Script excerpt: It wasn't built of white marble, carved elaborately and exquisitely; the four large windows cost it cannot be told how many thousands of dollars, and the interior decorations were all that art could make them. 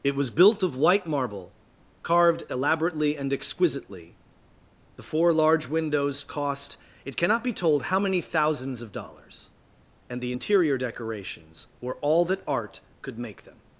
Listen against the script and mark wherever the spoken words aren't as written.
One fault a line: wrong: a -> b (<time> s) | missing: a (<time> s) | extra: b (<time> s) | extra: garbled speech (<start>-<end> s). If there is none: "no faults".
wrong: wasn't -> was (0.1 s)